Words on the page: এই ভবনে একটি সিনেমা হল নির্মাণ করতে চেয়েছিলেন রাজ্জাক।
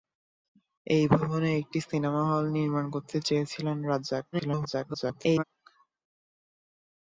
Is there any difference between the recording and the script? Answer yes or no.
yes